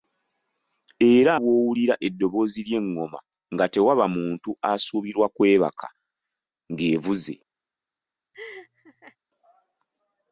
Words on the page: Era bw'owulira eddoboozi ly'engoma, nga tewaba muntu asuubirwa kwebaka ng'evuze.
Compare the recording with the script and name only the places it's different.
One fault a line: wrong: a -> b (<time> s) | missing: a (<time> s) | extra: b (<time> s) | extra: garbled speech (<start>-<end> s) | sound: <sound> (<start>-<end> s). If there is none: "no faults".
sound: laugh (8.3-9.2 s)